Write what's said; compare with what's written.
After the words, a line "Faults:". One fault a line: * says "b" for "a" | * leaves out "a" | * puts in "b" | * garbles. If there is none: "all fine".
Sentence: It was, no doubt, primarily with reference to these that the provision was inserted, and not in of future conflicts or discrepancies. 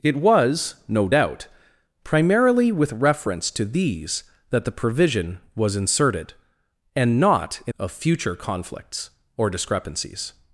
It was, no doubt, primarily with reference to these that the provision was inserted, and not in of future conflicts or discrepancies.
Faults:
all fine